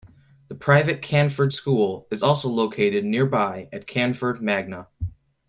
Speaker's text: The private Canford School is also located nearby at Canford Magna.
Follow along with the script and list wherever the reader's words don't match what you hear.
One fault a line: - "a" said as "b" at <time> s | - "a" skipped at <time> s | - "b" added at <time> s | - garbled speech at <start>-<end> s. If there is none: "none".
none